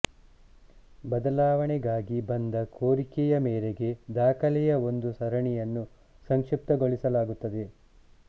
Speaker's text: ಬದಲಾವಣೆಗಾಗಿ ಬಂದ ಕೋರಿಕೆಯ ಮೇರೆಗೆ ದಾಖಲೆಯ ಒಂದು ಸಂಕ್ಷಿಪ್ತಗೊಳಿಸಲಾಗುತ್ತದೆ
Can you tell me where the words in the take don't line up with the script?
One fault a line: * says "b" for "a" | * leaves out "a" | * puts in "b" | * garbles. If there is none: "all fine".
* puts in "ಸರಣಿಯನ್ನು"